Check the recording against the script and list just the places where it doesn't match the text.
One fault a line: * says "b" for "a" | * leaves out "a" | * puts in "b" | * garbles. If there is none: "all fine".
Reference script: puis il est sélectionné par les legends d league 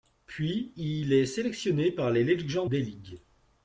all fine